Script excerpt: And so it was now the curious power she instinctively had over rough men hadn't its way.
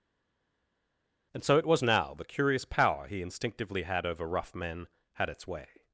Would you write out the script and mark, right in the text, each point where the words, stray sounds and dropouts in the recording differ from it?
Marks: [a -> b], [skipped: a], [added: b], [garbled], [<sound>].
And so it was now the curious power [she -> he] instinctively had over rough men [hadn't -> had] its way.